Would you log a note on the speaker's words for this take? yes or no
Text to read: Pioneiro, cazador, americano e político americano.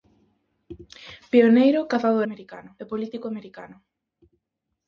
no